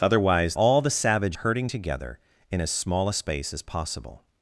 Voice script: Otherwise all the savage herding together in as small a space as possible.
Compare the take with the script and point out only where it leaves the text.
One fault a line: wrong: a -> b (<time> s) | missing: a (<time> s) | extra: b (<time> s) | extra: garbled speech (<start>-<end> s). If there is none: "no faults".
no faults